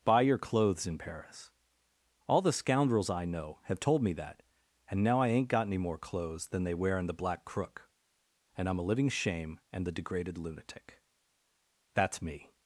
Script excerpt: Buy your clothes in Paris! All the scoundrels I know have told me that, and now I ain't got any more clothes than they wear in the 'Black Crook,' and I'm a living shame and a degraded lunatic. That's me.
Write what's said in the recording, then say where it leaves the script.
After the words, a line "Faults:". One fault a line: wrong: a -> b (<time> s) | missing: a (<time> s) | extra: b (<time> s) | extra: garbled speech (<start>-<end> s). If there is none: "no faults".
Buy your clothes in Paris! All the scoundrels I know have told me that, and now I ain't got any more clothes than they wear in the 'Black Crook,' and I'm a living shame and the degraded lunatic. That's me.
Faults:
wrong: a -> the (9.8 s)